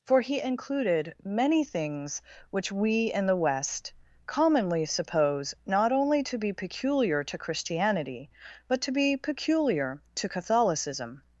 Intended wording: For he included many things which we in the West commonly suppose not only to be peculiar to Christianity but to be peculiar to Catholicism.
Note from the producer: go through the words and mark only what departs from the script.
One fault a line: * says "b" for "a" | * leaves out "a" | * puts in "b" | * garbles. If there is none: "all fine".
all fine